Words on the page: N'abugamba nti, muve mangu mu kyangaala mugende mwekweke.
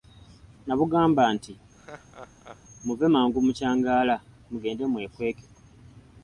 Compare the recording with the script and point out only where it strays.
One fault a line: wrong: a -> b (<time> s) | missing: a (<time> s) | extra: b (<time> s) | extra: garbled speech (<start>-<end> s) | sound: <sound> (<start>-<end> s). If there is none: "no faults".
sound: laugh (1.8-2.6 s)